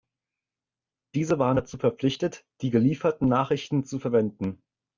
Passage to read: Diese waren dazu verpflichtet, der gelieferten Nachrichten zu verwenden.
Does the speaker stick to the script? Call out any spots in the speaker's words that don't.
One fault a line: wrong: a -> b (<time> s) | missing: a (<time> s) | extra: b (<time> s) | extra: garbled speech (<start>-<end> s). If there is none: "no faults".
wrong: der -> die (2.6 s)